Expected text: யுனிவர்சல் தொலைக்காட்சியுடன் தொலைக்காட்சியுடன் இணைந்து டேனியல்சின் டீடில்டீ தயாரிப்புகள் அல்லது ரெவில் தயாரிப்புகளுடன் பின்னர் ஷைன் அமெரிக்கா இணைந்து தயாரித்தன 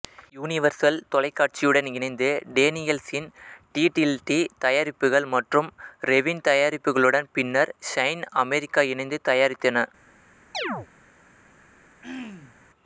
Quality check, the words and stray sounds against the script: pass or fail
fail